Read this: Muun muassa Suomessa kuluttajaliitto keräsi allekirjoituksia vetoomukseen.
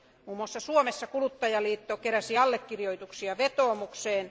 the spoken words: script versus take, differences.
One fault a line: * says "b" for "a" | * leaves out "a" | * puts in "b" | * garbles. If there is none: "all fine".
all fine